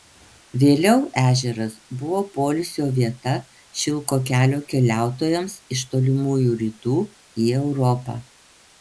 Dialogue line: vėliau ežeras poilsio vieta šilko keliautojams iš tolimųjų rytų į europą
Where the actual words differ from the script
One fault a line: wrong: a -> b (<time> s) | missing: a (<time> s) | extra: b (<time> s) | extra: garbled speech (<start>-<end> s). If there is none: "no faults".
extra: buvo (2.0 s)
extra: kelio (4.3 s)